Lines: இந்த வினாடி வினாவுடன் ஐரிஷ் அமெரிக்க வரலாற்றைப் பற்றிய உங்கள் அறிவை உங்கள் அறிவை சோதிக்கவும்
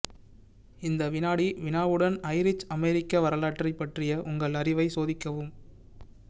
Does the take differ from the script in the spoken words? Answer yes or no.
yes